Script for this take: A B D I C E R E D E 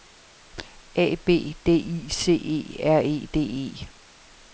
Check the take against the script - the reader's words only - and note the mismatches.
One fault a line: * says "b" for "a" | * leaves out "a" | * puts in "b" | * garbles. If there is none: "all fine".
all fine